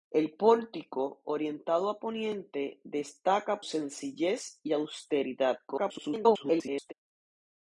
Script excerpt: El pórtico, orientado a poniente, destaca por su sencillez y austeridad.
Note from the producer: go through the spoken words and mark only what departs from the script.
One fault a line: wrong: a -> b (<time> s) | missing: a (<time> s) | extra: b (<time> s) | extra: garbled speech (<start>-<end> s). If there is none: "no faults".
missing: por su (3.6 s)
extra: garbled speech (5.7-6.9 s)